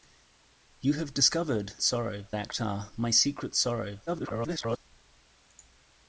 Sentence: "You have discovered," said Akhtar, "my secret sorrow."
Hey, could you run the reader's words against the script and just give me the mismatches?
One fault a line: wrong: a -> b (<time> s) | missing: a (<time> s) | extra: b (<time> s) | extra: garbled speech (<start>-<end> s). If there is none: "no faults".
wrong: said -> sorrow (1.8 s)
extra: garbled speech (4.1-4.8 s)